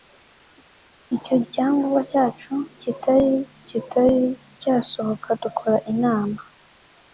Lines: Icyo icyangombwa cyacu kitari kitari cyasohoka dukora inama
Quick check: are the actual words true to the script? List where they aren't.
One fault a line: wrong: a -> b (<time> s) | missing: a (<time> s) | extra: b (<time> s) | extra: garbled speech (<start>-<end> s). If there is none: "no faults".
no faults